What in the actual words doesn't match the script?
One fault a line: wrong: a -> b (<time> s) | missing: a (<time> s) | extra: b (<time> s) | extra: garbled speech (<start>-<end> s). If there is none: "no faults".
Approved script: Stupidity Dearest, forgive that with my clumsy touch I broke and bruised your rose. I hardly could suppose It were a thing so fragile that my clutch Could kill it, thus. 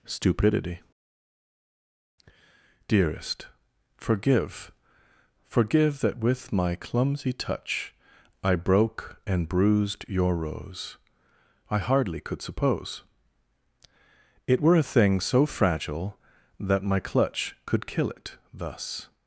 extra: forgive (5.4 s)